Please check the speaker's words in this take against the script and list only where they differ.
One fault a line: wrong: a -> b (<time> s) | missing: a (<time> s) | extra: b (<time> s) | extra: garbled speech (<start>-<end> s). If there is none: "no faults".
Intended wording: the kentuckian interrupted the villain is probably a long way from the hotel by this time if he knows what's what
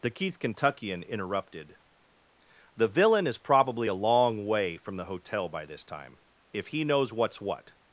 extra: keith (0.1 s)